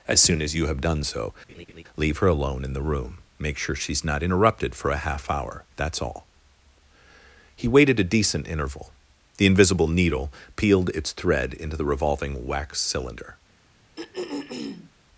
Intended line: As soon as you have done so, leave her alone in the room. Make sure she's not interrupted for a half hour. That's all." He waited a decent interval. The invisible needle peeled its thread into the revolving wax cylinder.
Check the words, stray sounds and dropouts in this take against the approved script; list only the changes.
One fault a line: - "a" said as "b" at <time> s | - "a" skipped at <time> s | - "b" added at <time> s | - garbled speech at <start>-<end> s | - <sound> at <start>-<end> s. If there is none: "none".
- laugh at 1.5-1.8 s
- throat clearing at 14.0-14.9 s